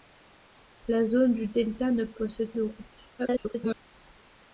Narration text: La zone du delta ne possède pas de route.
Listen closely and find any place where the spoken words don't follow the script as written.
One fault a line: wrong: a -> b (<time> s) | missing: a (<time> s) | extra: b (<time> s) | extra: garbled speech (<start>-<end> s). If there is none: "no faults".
missing: pas (2.5 s)
extra: garbled speech (3.2-3.9 s)